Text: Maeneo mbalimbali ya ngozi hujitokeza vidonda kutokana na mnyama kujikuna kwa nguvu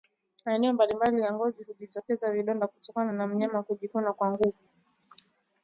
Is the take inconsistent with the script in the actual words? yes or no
no